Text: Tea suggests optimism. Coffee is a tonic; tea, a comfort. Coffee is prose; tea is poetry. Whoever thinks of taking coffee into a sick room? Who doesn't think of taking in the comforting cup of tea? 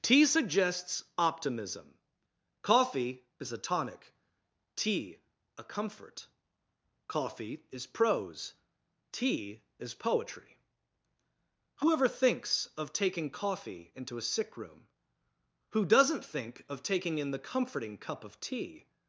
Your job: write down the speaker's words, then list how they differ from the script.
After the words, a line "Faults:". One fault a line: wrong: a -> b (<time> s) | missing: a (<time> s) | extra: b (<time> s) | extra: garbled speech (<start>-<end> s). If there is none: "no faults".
Tea suggests optimism. Coffee is a tonic; tea, a comfort. Coffee is prose; tea is poetry. Whoever thinks of taking coffee into a sick room? Who doesn't think of taking in the comforting cup of tea?
Faults:
no faults